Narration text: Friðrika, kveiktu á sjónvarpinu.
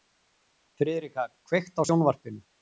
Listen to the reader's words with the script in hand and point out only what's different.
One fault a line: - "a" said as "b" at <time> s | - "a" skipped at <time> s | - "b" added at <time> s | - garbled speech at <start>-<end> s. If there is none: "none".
none